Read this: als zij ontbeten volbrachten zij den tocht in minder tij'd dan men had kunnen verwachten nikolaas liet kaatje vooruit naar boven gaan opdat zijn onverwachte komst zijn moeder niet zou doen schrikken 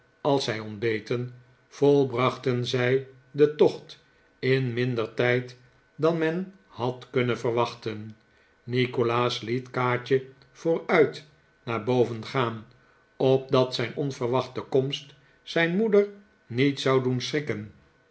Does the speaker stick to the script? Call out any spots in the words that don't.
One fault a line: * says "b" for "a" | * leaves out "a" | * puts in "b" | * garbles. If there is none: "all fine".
all fine